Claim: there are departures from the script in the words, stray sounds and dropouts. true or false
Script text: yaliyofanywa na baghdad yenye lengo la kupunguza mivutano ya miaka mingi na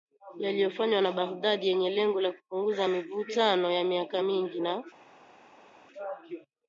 false